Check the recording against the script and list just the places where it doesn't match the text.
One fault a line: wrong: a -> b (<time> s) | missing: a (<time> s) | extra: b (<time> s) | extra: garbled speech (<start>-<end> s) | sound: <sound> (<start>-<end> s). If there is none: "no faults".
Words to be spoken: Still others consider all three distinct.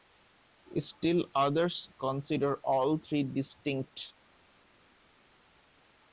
no faults